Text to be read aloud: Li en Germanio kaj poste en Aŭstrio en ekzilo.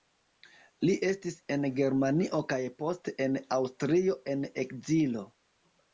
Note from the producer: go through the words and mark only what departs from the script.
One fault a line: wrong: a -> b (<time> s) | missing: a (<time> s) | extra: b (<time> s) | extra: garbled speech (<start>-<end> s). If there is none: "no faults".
extra: estis (1.1 s)